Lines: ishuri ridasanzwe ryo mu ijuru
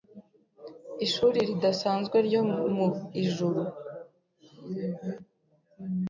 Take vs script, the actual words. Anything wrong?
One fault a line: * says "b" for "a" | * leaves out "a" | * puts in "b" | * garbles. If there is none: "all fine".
all fine